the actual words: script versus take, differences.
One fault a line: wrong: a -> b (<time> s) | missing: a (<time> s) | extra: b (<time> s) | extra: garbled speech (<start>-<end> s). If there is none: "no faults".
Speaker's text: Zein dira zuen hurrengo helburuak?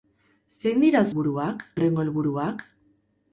wrong: zuen -> helburuak (1.1 s)